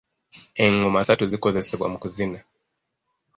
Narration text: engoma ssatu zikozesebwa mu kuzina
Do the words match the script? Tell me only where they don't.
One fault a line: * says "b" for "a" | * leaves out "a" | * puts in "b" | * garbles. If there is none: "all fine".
all fine